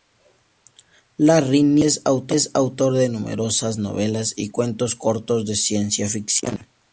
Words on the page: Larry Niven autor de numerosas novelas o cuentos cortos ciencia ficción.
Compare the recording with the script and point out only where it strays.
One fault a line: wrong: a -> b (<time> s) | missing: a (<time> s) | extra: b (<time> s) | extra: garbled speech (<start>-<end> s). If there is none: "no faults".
extra: es (2.3 s)
wrong: o -> y (4.3 s)
extra: de (5.5 s)